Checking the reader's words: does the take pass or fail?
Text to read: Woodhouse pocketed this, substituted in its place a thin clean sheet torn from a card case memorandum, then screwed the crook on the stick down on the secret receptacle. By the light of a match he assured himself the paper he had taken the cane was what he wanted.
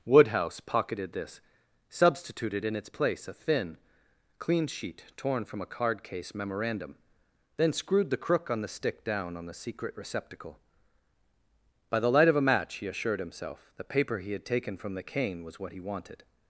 fail